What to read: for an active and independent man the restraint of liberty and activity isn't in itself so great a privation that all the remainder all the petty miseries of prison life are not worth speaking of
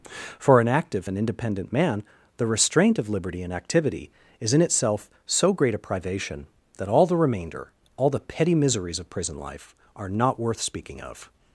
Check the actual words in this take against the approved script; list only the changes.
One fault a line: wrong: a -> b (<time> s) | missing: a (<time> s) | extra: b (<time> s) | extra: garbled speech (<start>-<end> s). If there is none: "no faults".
wrong: isn't -> is (4.4 s)